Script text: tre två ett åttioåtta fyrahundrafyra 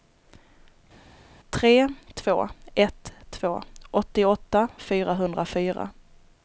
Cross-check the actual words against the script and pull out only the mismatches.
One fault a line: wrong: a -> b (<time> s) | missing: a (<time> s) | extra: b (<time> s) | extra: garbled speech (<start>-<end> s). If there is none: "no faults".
extra: två (3.3 s)